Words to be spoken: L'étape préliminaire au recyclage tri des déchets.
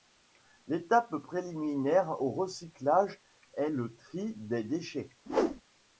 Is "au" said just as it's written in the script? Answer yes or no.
yes